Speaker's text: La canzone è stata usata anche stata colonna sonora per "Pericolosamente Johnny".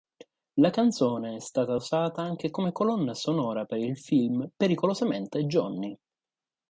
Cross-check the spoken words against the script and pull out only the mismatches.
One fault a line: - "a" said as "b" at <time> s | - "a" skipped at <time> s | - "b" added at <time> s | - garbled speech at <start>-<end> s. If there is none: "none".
- "stata" said as "come" at 2.5 s
- "il film" added at 3.8 s